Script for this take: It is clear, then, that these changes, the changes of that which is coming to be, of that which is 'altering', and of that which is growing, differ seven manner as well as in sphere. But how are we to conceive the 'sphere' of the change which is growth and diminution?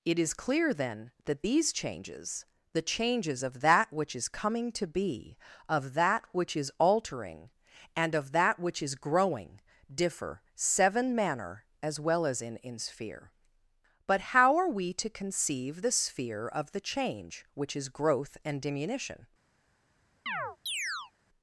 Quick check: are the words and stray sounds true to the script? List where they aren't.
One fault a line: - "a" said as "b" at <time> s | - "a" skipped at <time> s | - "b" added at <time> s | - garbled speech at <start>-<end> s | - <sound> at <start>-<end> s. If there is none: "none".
- "in" added at 12.6 s
- chirp at 20.3-21.1 s